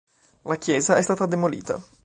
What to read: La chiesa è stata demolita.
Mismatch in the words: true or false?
false